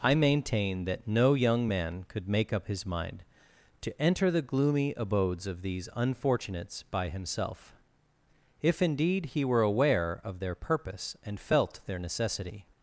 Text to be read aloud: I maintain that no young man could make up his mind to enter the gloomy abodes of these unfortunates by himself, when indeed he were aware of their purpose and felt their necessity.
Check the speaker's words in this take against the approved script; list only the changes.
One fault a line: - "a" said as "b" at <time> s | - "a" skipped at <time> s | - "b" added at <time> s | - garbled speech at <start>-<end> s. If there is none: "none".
- "when" said as "if" at 8.6 s